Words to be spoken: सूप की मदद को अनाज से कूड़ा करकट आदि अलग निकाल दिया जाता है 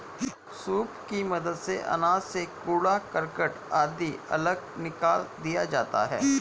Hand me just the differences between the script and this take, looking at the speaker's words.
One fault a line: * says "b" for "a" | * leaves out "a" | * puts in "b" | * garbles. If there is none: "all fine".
* says "से" for "को"